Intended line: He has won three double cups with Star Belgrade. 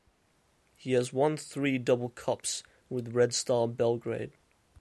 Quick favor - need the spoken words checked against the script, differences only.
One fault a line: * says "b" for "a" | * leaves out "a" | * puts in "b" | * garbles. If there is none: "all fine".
* puts in "Red"